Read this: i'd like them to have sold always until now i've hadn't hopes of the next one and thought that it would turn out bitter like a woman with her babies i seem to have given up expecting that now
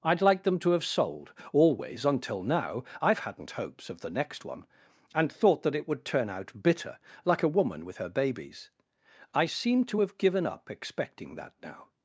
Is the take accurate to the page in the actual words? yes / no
yes